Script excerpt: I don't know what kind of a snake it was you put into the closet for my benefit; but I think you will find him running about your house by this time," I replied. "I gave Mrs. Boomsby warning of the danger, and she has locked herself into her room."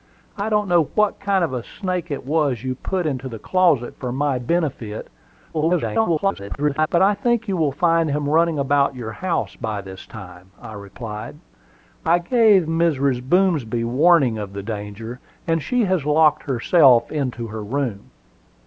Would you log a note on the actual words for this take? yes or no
yes